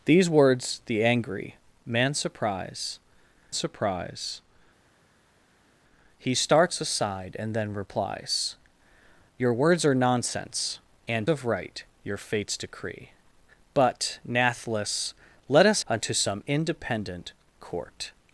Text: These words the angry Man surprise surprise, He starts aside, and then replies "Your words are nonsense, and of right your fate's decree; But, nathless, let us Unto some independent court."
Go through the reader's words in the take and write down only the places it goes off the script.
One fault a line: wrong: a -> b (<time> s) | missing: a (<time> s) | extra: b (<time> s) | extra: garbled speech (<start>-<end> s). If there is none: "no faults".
no faults